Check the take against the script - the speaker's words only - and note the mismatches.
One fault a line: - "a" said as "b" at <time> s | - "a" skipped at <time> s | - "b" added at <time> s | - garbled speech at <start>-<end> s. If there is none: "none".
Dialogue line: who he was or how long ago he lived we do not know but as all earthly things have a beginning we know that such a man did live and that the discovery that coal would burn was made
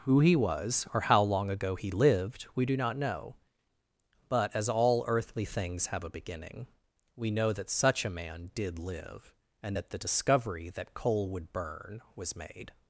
none